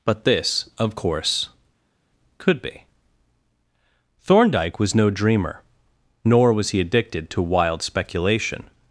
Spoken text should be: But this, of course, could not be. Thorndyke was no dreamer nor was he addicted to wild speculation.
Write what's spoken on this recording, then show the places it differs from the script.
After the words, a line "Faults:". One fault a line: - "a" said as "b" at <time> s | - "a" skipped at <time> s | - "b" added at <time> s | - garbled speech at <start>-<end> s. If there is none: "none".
But this, of course, could be. Thorndyke was no dreamer nor was he addicted to wild speculation.
Faults:
- "not" skipped at 2.6 s